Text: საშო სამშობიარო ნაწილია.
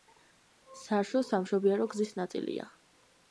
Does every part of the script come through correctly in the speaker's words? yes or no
no